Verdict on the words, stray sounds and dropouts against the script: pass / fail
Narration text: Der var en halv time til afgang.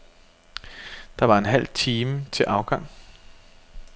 pass